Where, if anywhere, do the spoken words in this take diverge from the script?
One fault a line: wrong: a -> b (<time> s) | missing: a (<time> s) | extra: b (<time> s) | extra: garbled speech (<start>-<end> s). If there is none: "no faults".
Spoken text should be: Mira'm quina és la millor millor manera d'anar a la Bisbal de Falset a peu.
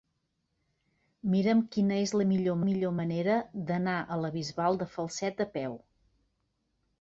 no faults